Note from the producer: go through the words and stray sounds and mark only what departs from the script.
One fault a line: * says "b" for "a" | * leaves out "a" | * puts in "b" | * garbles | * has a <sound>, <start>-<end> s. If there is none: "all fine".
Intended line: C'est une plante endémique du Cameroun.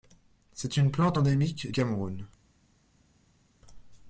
* leaves out "du"